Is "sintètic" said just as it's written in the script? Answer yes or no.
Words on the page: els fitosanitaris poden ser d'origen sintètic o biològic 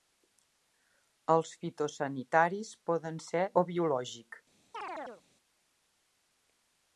no